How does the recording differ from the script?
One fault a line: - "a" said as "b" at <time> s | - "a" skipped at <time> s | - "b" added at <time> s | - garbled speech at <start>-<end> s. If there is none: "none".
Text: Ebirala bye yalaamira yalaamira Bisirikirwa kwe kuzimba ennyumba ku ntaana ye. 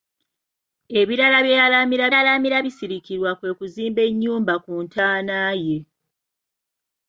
none